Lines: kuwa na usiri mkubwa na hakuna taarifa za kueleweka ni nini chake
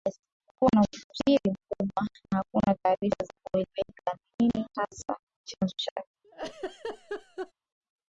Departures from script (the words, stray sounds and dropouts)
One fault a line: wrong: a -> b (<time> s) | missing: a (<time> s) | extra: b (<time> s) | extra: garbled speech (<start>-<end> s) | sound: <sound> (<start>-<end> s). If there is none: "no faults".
extra: hasa chanzo (4.7 s)
sound: laugh (6.2-7.5 s)